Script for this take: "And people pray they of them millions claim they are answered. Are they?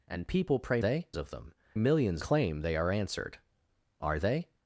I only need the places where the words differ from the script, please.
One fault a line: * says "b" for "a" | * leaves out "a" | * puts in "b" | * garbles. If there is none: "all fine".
all fine